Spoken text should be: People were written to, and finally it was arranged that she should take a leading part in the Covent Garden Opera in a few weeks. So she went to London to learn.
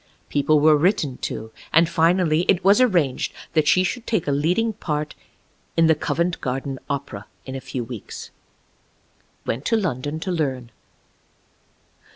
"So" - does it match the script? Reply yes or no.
no